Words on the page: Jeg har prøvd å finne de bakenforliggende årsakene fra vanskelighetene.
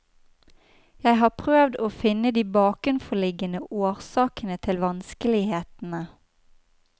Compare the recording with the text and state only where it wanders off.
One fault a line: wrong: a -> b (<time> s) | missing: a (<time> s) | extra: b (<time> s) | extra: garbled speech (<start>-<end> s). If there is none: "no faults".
wrong: fra -> til (4.7 s)